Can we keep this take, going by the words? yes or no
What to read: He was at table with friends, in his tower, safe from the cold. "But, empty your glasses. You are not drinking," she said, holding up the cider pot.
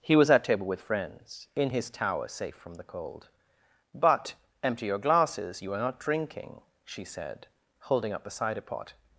yes